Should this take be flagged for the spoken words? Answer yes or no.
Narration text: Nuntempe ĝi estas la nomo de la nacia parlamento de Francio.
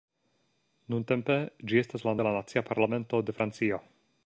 yes